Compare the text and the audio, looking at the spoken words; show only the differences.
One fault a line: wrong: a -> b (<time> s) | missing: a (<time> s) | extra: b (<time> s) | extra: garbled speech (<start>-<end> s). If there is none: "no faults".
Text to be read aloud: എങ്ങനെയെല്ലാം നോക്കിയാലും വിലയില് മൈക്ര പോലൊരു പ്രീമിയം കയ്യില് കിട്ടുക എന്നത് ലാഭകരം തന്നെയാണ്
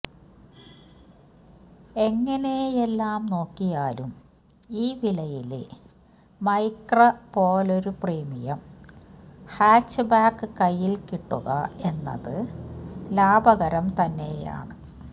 extra: ഈ (4.8 s)
extra: ഹാച്ച്ബാക്ക് (9.5 s)